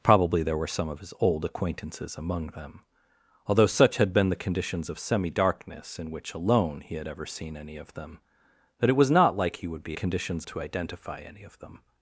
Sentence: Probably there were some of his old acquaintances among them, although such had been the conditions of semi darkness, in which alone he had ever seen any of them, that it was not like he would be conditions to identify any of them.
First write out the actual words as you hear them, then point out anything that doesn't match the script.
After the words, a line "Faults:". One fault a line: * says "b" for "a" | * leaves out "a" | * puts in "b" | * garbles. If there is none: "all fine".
Probably there were some of his old acquaintances among them, although such had been the conditions of semi darkness, in which alone he had ever seen any of them, that it was not like he would be conditions to identify any of them.
Faults:
all fine